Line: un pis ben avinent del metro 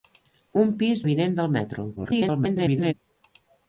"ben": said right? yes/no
no